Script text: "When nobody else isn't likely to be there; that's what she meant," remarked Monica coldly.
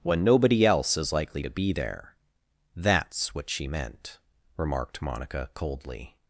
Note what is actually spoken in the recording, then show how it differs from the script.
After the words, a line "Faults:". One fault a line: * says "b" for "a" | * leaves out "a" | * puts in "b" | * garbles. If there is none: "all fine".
"When nobody else is likely to be there; that's what she meant," remarked Monica coldly.
Faults:
* says "is" for "isn't"